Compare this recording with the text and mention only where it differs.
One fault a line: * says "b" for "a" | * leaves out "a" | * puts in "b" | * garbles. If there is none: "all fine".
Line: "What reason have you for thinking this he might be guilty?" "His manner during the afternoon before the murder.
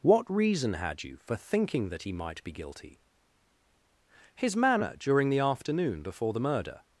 * says "had" for "have"
* says "that" for "this"